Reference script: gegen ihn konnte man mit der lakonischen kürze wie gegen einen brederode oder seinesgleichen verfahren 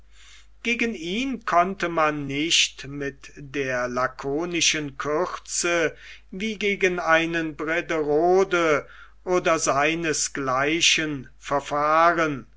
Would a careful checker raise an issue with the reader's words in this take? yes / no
yes